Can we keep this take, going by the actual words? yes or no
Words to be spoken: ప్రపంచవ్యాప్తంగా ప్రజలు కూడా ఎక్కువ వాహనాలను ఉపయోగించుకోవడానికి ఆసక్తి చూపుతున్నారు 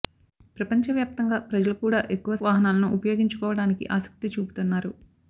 yes